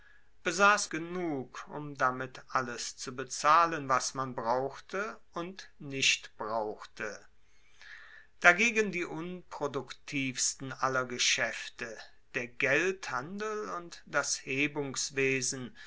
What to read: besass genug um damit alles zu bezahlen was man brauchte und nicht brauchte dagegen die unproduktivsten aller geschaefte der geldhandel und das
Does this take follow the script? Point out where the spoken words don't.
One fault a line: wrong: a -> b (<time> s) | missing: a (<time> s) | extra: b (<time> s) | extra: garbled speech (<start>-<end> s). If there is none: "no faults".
no faults